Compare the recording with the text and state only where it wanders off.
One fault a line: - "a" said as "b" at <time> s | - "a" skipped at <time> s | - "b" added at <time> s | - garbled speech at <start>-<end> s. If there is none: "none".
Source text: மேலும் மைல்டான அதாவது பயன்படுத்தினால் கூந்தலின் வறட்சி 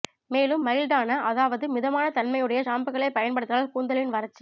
- "மிதமான தன்மையுடைய ஷாம்புக்களை" added at 1.7 s